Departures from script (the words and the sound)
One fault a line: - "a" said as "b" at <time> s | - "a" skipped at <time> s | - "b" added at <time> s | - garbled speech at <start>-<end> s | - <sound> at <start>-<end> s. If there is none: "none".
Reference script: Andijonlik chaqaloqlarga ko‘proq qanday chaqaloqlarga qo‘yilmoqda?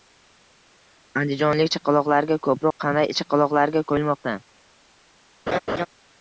- dropout at 2.7-2.8 s
- laugh at 5.5-5.9 s